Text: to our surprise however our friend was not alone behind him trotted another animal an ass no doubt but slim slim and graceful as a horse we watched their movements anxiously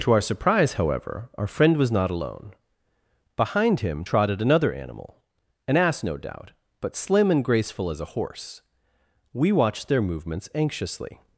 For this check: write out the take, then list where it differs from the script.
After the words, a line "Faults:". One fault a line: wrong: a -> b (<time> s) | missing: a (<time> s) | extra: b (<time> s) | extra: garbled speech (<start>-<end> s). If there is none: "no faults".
to our surprise however our friend was not alone behind him trotted another animal an ass no doubt but slim and graceful as a horse we watched their movements anxiously
Faults:
missing: slim (7.3 s)